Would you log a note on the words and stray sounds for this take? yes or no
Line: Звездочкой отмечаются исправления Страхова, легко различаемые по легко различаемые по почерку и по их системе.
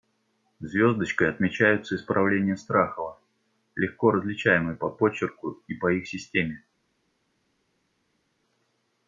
yes